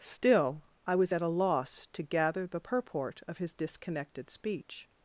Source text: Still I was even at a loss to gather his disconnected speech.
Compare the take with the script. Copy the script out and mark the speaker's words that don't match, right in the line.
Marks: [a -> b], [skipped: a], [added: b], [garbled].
Still I was [skipped: even] at a loss to gather [added: the purport of] his disconnected speech.